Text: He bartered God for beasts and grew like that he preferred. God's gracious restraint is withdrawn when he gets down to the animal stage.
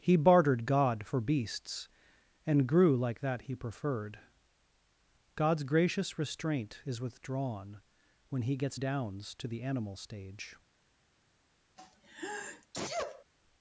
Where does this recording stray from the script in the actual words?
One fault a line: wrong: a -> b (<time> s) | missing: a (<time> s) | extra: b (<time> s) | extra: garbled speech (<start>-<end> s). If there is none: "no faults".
wrong: down -> downs (8.7 s)